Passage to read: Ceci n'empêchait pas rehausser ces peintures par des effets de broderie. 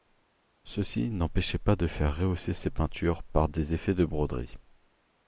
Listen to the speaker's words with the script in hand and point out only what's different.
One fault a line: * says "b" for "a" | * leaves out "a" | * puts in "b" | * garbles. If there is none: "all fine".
* puts in "de faire"